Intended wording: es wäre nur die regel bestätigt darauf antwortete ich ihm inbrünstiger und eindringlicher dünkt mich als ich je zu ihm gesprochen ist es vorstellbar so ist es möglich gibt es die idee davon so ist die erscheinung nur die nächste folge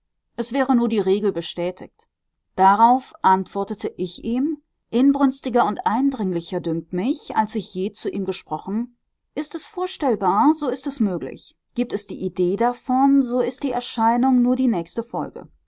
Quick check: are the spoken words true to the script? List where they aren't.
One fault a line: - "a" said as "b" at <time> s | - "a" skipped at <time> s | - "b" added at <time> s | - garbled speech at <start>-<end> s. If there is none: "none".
none